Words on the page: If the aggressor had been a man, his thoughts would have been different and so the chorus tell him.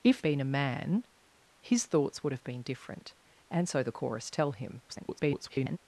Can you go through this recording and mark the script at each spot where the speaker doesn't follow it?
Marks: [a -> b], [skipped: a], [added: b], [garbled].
If [skipped: the aggressor had] been a man, his thoughts would have been different and so the chorus tell him. [garbled]